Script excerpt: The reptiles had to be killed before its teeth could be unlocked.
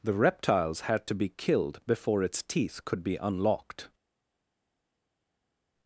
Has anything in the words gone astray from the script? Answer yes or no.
no